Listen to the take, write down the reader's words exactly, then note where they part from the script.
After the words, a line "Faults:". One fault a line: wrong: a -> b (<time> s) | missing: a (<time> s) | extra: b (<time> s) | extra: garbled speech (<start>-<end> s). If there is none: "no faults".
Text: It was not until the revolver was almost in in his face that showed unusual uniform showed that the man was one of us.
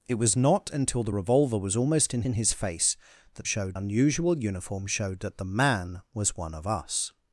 It was not until the revolver was almost in in his face that showed unusual uniform showed that the man was one of us.
Faults:
no faults